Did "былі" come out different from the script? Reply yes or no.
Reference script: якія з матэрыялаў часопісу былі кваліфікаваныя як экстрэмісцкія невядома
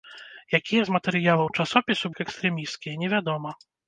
yes